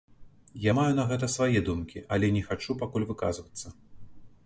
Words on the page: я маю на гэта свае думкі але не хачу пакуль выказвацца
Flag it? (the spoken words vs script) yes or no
no